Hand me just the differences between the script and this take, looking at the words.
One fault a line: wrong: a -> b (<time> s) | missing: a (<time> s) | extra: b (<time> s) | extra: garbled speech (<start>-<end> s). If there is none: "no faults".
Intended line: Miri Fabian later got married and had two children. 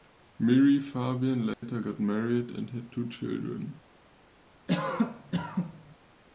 no faults